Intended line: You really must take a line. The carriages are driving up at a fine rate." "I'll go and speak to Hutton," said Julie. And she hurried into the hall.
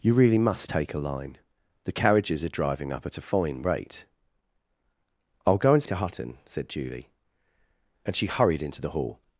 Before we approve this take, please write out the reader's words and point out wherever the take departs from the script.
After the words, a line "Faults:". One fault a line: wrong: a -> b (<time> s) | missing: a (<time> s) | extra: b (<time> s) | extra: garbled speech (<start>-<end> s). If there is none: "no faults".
You really must take a line. The carriages are driving up at a fine rate." "I'll go and to Hutton," said Julie. And she hurried into the hall.
Faults:
missing: speak (5.8 s)